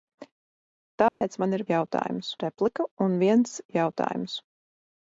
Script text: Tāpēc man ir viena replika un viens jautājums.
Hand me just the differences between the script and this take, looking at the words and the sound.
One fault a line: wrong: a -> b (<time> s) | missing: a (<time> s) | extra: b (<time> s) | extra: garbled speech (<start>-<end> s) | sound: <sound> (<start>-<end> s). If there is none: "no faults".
sound: dropout (1.1-1.2 s)
wrong: viena -> jautājums (1.7 s)